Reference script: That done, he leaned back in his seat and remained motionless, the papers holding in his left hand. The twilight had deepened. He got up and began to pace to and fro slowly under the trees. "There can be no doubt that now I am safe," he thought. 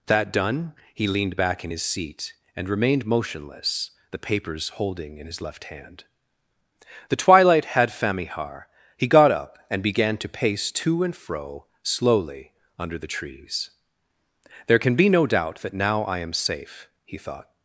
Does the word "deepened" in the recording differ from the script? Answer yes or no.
yes